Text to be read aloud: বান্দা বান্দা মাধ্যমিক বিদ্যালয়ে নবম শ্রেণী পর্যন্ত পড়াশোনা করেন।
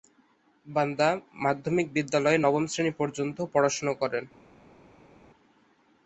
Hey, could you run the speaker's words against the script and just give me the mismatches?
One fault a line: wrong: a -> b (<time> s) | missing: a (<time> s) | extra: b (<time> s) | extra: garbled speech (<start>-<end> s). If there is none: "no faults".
missing: বান্দা (1.1 s)